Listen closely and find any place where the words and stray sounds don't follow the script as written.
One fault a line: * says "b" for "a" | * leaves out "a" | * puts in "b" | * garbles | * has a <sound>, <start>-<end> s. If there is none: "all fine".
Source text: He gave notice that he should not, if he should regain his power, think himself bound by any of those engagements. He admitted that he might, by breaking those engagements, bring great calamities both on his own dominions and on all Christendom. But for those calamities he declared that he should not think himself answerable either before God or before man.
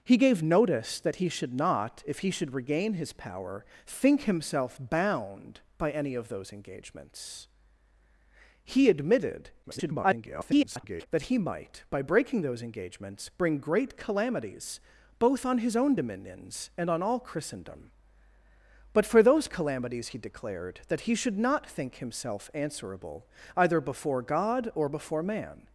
* garbles